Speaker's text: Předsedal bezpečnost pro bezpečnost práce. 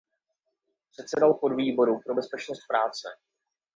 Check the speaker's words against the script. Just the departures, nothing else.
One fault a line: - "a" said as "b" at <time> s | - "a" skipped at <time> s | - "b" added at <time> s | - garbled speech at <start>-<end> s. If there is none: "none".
- "bezpečnost" said as "podvýboru" at 1.3 s